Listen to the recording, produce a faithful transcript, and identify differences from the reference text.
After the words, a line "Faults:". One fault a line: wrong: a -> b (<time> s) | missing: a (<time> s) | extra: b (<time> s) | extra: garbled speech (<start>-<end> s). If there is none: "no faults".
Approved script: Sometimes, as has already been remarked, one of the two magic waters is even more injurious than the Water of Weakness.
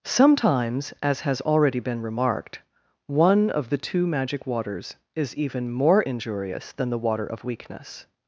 Sometimes, as has already been remarked, one of the two magic waters is even more injurious than the Water of Weakness.
Faults:
no faults